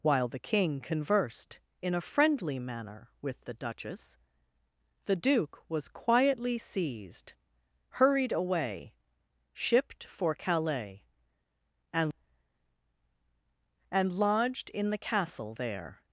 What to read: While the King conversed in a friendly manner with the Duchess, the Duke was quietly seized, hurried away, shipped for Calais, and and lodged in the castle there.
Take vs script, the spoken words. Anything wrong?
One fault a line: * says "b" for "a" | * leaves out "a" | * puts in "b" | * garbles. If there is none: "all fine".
all fine